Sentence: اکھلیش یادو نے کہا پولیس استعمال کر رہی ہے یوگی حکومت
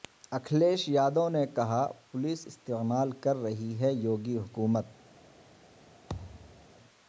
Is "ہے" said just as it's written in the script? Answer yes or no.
yes